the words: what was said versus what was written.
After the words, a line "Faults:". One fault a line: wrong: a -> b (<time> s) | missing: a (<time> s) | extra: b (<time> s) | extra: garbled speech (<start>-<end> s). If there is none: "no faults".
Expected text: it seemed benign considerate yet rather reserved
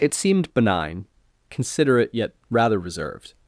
it seemed benign considerate yet rather reserved
Faults:
no faults